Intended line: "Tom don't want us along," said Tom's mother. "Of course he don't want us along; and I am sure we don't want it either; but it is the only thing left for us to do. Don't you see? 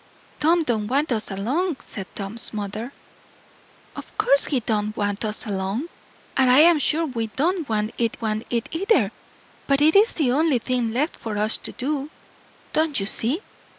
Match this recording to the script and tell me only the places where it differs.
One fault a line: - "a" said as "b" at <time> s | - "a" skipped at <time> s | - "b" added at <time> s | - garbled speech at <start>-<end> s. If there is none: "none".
- "want it" added at 8.2 s